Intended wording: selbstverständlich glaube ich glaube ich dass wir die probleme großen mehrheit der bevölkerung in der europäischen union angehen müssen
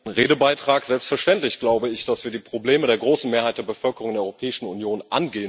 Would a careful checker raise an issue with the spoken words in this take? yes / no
yes